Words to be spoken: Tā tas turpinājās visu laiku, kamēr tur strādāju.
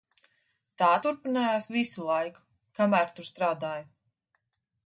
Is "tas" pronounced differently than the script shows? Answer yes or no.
yes